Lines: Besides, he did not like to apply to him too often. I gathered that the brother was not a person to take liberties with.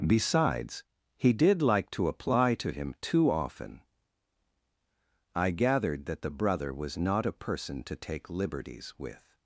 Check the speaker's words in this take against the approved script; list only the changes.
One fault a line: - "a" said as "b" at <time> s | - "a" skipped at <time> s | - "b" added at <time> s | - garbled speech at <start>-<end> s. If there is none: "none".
- "not" skipped at 1.6 s